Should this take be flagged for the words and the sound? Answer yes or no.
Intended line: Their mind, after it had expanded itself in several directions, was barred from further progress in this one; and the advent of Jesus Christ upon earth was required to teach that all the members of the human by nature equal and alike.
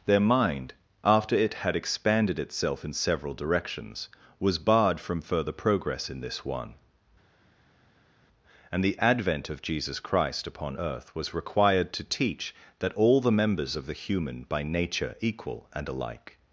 no